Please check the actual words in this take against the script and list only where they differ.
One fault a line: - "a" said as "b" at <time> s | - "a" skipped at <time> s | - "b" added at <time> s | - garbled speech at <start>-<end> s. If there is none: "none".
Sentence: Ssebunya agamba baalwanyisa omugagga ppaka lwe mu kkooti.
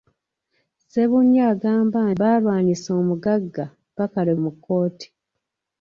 none